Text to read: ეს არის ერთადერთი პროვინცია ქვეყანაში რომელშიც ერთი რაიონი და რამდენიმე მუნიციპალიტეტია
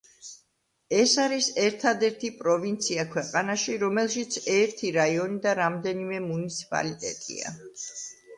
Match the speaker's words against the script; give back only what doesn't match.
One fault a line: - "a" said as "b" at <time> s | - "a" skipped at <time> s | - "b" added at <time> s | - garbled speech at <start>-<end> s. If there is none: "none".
none